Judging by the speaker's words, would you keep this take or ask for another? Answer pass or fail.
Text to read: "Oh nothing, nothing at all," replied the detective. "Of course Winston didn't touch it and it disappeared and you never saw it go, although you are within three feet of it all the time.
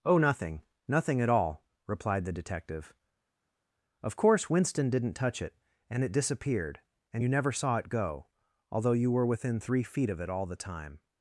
fail